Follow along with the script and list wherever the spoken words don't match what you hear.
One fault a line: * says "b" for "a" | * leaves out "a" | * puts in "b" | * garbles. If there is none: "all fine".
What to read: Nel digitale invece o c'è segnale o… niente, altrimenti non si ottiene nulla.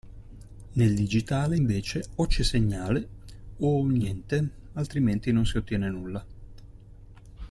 all fine